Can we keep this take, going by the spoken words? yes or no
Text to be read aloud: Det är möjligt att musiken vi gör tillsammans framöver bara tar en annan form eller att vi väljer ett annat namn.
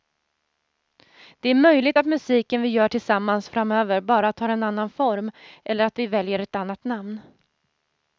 yes